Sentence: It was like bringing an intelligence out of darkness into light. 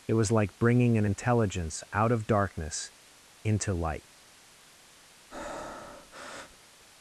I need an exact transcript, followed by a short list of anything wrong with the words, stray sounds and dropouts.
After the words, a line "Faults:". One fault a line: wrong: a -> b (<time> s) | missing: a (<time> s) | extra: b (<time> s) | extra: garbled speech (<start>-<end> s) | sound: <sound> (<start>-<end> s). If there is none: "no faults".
It was like bringing an intelligence out of darkness into light.
Faults:
sound: breath (5.3-6.7 s)